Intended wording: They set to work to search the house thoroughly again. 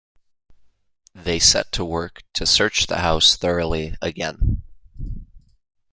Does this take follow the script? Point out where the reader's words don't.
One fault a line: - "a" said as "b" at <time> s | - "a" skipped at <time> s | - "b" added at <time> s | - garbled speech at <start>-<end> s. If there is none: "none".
none